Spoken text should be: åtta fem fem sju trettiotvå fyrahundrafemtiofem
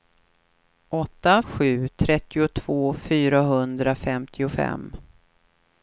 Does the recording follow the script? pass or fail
fail